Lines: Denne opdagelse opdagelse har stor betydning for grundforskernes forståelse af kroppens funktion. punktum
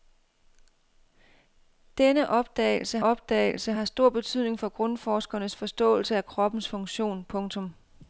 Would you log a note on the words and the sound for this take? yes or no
no